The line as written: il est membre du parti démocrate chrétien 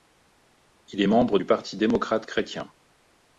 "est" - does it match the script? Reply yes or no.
yes